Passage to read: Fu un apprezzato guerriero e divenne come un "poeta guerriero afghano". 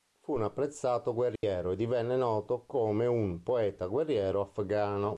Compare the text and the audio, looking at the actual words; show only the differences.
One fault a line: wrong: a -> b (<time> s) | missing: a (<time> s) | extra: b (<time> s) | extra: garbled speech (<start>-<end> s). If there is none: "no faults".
extra: noto (2.1 s)